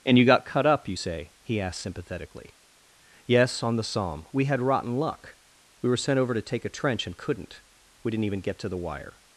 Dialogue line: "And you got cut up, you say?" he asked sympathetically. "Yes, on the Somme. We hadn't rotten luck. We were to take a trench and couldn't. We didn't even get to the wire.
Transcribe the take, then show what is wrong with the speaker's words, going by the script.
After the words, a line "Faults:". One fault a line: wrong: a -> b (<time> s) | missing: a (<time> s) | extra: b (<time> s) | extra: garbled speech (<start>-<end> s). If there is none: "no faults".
"And you got cut up, you say?" he asked sympathetically. "Yes, on the Somme. We had rotten luck. We were sent over to take a trench and couldn't. We didn't even get to the wire.
Faults:
wrong: hadn't -> had (4.5 s)
extra: sent over (6.0 s)